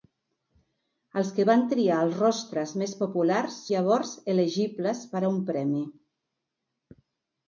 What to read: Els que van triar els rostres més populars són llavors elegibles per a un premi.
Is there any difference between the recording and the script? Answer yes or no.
yes